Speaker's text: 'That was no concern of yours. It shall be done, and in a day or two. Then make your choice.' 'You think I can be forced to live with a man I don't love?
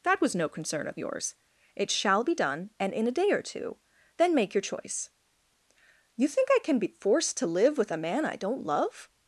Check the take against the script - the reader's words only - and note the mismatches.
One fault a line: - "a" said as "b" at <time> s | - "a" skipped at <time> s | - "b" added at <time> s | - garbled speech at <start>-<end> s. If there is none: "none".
none